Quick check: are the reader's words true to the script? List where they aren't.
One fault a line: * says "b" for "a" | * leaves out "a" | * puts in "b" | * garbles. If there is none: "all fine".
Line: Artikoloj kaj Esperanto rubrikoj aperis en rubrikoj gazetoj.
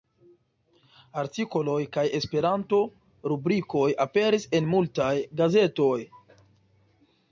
* says "multaj" for "rubrikoj"